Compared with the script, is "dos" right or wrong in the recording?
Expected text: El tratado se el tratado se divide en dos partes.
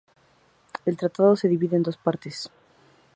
right